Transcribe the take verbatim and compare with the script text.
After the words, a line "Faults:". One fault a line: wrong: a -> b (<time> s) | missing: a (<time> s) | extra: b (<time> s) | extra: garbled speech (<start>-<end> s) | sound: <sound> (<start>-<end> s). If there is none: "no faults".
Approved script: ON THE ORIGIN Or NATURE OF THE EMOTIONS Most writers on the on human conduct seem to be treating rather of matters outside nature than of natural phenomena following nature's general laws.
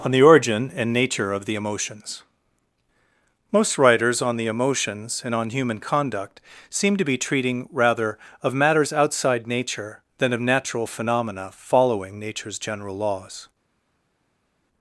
ON THE ORIGIN AND NATURE OF THE EMOTIONS Most writers on the emotions and on human conduct seem to be treating rather of matters outside nature than of natural phenomena following nature's general laws.
Faults:
wrong: Or -> AND (0.8 s)
extra: emotions and (4.5 s)